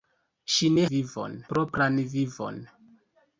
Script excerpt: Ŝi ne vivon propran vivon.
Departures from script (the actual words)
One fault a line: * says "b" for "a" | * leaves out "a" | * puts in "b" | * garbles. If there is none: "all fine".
all fine